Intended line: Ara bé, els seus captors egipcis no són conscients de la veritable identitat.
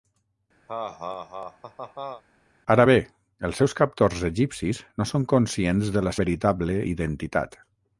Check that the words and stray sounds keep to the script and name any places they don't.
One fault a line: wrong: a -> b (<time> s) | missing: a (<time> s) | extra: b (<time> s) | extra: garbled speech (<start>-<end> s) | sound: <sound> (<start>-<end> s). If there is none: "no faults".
sound: laugh (0.7-2.2 s)